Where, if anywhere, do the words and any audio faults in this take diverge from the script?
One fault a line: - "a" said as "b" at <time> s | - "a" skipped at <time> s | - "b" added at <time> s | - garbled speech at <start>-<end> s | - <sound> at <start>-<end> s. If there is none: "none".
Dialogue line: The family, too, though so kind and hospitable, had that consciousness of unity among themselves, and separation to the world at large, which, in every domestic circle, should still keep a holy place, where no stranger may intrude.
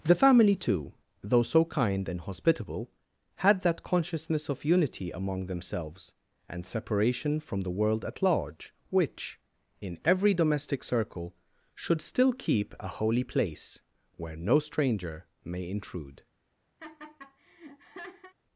- "to" said as "from" at 7.4 s
- laugh at 16.8-18.3 s